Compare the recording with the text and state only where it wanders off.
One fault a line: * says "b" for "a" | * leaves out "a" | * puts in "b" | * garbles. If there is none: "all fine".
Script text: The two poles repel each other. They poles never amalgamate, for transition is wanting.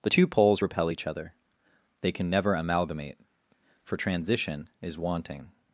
* says "can" for "poles"